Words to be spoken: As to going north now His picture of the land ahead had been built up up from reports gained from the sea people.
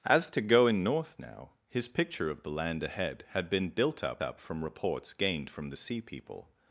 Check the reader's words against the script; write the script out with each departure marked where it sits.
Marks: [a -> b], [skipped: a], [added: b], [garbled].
As to going north now His picture of the land ahead had been built up up from reports gained from the sea people.